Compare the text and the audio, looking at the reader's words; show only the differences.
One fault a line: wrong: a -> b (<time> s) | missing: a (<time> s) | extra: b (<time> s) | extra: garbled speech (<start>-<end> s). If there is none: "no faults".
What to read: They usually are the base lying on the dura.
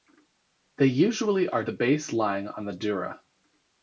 no faults